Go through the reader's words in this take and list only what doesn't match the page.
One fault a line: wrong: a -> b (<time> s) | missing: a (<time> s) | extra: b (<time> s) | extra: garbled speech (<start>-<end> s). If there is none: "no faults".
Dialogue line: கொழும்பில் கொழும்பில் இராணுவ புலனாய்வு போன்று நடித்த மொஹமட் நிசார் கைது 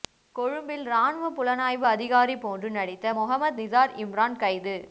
missing: கொழும்பில் (0.8 s)
extra: அதிகாரி (1.9 s)
extra: இம்ரான் (4.0 s)